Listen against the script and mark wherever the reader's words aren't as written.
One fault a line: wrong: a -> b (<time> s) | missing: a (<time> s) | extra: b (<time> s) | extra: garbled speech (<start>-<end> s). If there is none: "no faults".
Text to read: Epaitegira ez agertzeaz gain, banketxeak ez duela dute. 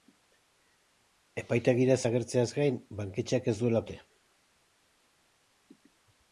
no faults